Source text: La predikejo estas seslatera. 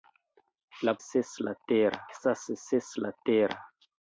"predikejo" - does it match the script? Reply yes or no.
no